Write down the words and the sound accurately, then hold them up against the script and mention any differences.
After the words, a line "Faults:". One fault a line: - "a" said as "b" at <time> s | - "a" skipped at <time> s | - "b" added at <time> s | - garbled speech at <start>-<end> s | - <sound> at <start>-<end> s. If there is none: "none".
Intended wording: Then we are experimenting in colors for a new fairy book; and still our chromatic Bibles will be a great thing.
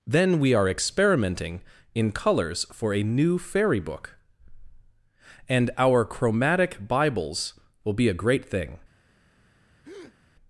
Then we are experimenting in colors for a new fairy book; and our chromatic Bibles will be a great thing.
Faults:
- "still" skipped at 5.7 s
- breath at 9.8-10.2 s